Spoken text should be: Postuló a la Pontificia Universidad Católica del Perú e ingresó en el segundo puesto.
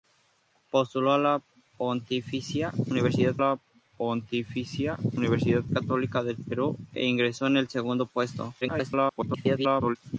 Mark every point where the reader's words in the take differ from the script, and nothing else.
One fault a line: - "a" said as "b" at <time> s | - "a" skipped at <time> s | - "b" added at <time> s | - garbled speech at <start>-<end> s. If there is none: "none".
- "la Pontificia Universidad" added at 3.4 s
- garbled speech at 8.6-10.0 s